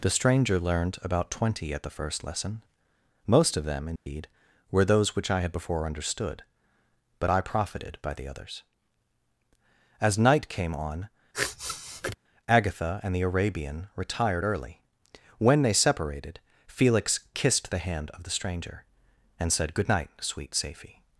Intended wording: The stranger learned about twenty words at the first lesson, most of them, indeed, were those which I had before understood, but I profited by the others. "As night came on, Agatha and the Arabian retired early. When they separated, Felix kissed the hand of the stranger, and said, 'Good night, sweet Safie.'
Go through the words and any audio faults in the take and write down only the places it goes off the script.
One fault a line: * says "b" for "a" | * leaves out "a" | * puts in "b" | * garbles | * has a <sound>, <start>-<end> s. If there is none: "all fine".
* leaves out "words"
* has a dropout, 4.0-4.1 s
* has a sniff, 11.3-12.2 s